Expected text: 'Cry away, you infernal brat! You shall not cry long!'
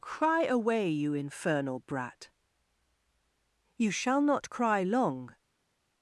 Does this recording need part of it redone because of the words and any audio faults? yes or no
no